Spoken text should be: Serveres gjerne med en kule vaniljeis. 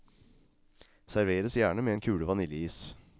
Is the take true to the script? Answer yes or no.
yes